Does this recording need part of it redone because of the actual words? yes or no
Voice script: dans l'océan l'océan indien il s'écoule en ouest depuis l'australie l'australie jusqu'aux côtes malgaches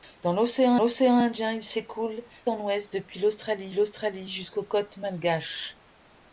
no